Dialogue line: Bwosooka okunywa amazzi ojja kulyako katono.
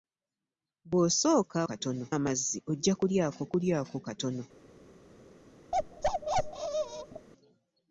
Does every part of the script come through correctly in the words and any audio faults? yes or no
no